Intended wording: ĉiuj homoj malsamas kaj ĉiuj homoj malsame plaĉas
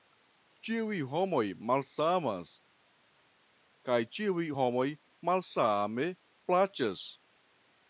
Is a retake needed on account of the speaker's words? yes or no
no